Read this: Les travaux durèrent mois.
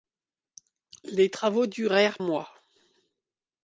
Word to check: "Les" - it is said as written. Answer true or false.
true